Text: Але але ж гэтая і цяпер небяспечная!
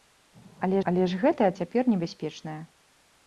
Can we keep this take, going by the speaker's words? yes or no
yes